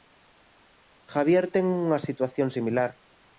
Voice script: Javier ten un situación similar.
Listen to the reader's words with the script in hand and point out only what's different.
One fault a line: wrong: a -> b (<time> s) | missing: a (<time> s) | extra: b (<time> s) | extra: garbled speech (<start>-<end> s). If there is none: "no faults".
wrong: un -> unha (1.9 s)